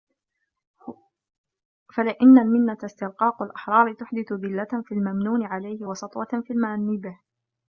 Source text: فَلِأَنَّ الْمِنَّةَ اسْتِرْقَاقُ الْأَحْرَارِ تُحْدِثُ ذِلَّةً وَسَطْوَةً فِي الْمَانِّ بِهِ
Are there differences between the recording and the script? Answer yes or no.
yes